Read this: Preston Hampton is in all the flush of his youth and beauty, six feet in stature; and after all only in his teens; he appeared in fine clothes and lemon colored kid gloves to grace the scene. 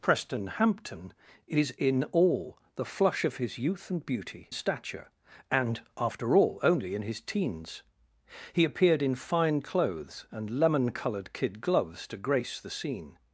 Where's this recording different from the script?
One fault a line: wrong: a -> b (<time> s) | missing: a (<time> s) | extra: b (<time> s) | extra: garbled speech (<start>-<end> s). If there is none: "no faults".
missing: six feet in (4.5 s)